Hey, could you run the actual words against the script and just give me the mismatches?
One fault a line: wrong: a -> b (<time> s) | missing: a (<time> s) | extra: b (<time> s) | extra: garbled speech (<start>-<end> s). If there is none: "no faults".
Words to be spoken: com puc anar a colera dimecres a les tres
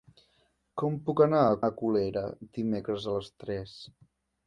extra: a (1.6 s)